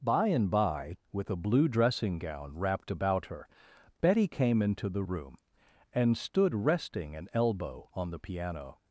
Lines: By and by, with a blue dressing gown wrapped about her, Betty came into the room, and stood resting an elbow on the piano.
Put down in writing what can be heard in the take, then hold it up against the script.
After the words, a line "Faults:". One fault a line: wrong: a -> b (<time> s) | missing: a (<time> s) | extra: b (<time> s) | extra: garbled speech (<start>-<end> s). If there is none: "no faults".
By and by, with a blue dressing gown wrapped about her, Betty came into the room, and stood resting an elbow on the piano.
Faults:
no faults